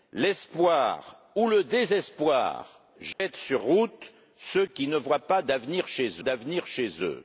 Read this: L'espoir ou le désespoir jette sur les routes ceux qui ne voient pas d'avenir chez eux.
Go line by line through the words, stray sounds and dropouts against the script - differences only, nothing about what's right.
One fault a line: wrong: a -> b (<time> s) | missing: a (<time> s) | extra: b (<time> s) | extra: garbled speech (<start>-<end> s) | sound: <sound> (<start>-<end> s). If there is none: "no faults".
sound: dropout (3.1-3.2 s)
missing: les (3.6 s)
extra: d'avenir chez (6.2 s)